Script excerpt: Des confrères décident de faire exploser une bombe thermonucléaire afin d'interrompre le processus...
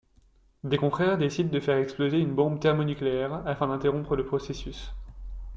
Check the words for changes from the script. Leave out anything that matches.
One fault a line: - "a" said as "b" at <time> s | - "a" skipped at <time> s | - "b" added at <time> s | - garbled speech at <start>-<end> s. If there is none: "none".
none